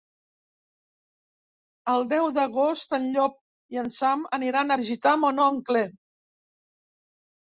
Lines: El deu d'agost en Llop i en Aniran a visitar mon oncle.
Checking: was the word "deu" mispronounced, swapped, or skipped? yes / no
no